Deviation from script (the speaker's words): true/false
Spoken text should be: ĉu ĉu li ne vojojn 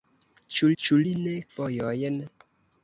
false